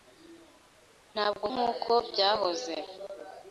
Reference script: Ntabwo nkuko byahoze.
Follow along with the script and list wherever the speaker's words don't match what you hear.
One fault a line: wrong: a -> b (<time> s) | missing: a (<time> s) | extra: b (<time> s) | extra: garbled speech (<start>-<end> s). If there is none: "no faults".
no faults